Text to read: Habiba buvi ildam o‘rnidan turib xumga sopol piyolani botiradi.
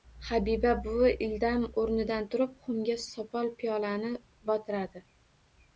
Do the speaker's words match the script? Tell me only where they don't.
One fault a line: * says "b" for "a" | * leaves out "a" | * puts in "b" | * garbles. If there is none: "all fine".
all fine